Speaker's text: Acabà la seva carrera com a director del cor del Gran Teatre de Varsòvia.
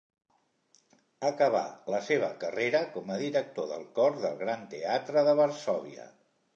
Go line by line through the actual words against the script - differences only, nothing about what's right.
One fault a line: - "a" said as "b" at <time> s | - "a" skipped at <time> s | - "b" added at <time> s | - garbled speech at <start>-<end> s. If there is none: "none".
none